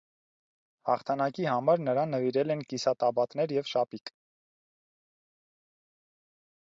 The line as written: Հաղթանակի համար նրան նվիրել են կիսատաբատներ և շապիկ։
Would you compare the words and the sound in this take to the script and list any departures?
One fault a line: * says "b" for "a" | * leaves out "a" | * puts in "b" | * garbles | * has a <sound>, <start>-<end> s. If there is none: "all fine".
all fine